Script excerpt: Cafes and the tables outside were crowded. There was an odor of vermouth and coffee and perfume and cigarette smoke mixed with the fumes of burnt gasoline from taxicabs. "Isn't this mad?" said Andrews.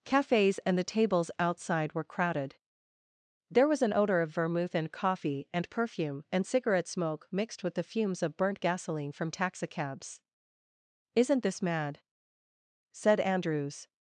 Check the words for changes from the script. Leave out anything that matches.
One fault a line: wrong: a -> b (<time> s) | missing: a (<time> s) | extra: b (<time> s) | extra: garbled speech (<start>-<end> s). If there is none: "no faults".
no faults